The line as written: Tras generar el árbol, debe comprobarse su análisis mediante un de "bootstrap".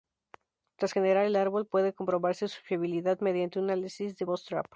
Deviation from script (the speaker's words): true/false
true